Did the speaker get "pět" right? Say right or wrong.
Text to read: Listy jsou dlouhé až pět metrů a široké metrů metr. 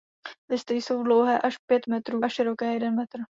right